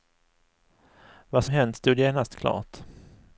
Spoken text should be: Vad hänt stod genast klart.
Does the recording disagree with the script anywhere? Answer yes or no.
no